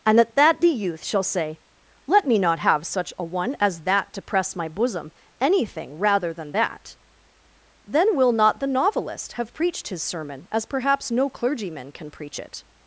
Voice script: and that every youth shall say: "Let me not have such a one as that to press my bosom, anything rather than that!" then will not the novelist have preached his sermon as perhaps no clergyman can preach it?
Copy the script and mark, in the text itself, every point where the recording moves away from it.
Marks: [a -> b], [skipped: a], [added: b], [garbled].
and [added: at] that [every -> the] youth shall say: "Let me not have such a one as that to press my bosom, anything rather than that!" then will not the novelist have preached his sermon as perhaps no clergyman can preach it?